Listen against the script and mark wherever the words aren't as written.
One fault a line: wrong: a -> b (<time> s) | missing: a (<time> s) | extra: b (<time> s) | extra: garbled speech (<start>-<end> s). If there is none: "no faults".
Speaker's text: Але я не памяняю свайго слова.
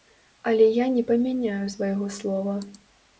no faults